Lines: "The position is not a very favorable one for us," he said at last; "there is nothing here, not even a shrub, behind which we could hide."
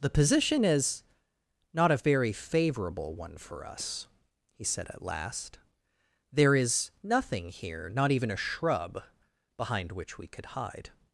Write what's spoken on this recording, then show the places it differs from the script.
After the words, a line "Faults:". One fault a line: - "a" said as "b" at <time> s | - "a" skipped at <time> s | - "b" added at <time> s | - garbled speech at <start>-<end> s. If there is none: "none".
"The position is not a very favorable one for us," he said at last; "there is nothing here, not even a shrub, behind which we could hide."
Faults:
none